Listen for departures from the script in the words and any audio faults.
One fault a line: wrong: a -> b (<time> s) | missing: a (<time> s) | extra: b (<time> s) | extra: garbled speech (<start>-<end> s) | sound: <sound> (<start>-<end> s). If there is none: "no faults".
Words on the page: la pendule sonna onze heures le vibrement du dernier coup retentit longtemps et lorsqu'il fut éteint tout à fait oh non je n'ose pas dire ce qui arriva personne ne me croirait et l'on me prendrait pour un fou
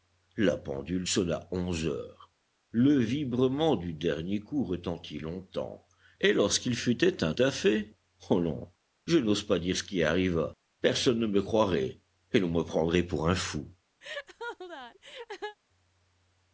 missing: tout (7.3 s)
sound: laugh (14.0-15.6 s)